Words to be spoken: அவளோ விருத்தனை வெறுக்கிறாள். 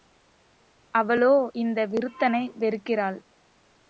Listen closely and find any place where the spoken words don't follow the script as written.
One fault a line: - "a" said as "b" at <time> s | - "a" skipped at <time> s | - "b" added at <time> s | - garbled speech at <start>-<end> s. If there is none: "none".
- "இந்த" added at 1.5 s